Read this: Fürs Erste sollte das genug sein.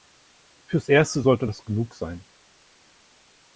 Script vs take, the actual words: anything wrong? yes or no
no